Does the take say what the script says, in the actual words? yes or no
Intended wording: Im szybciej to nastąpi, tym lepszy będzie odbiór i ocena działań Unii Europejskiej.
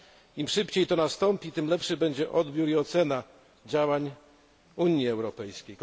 yes